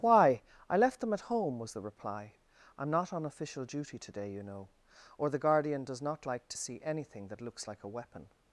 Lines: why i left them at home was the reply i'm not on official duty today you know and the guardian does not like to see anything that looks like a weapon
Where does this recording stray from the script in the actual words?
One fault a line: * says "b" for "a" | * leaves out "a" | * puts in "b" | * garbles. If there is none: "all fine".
* says "or" for "and"